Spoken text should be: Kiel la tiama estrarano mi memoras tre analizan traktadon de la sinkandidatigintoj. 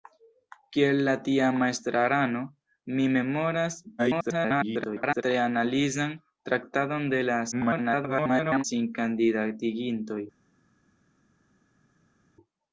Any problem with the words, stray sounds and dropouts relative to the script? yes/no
yes